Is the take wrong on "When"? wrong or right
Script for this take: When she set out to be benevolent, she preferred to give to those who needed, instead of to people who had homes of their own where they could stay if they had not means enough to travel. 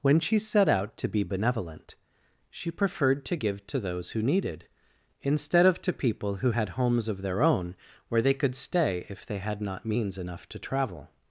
right